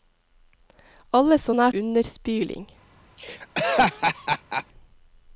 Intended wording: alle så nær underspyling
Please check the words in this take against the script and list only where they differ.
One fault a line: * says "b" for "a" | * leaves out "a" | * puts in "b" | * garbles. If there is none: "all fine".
all fine